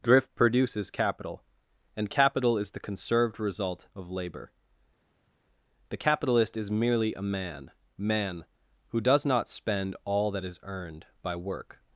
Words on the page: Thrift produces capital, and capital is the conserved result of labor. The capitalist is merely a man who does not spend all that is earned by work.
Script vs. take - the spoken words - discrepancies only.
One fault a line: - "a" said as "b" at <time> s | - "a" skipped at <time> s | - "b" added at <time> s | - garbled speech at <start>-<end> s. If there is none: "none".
- "man" added at 8.0 s